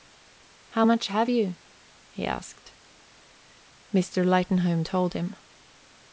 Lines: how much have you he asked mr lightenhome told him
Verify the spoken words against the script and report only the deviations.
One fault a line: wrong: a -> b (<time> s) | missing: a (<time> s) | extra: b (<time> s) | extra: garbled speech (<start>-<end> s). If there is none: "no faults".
no faults